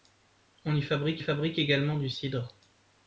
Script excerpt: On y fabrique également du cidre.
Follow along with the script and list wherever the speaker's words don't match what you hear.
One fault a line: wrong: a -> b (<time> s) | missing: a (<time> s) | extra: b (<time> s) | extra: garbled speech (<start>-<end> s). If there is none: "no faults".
extra: fabrique (1.2 s)